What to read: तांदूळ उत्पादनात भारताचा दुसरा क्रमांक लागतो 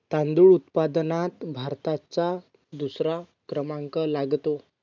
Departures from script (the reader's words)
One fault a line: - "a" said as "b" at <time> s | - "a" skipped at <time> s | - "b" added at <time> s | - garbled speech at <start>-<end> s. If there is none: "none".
none